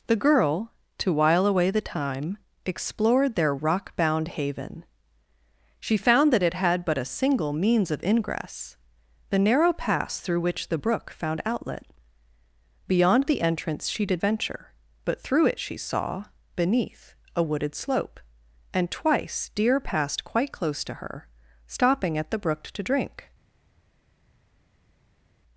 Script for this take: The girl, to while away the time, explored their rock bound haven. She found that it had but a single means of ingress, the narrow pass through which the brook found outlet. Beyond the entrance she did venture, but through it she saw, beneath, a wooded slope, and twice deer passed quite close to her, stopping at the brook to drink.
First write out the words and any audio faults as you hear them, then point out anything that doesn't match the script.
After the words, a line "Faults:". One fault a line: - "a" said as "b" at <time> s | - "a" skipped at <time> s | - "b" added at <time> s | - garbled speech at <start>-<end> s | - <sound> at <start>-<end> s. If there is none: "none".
The girl, to while away the time, explored their rock bound haven. She found that it had but a single means of ingress, the narrow pass through which the brook found outlet. Beyond the entrance she did venture, but through it she saw, beneath, a wooded slope, and twice deer passed quite close to her, stopping at the brook to drink.
Faults:
none